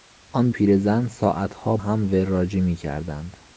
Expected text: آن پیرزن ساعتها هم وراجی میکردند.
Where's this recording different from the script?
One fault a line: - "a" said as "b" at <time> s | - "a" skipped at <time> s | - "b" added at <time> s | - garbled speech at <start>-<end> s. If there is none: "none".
none